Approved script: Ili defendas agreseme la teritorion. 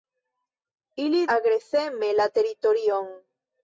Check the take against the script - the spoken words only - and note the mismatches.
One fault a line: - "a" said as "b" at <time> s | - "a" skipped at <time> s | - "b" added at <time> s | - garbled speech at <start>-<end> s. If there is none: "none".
- "defendas" skipped at 1.2 s